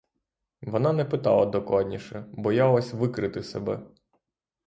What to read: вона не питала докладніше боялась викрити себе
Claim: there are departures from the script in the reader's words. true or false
false